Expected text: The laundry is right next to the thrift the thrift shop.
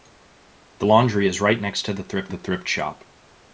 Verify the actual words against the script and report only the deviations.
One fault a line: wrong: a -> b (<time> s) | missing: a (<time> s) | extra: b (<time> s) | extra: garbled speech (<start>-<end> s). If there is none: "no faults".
no faults